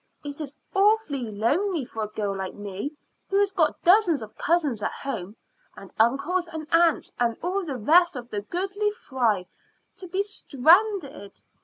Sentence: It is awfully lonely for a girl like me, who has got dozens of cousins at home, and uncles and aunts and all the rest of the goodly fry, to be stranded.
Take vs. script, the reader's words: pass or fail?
pass